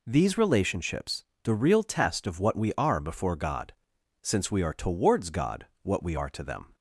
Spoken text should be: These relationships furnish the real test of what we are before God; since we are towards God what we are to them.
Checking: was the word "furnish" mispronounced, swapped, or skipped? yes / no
yes